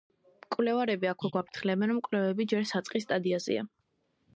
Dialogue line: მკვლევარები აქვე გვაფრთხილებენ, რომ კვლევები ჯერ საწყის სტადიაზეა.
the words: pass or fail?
pass